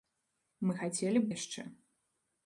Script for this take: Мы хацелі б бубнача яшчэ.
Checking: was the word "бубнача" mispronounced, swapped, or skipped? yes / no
yes